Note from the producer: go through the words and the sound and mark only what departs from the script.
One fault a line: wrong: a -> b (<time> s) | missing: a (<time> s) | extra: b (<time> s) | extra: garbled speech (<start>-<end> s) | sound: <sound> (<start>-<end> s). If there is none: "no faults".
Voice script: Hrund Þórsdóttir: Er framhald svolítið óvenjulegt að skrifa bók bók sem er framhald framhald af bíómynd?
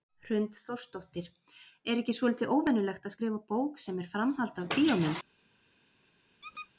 wrong: framhald -> ekki (2.0 s)
missing: bók (3.8 s)
missing: framhald (4.6 s)
sound: squeak (6.4-6.7 s)